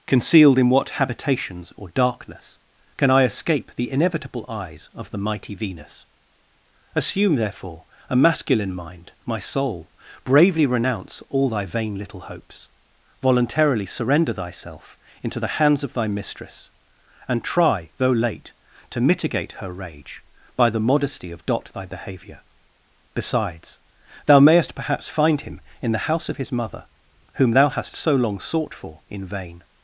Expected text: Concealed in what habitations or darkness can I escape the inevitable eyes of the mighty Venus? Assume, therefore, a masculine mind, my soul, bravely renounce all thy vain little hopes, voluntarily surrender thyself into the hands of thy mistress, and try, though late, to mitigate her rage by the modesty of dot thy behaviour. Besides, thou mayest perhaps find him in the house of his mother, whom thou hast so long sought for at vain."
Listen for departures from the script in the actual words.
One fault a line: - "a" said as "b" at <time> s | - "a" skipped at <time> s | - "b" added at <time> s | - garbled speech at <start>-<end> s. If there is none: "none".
- "at" said as "in" at 29.1 s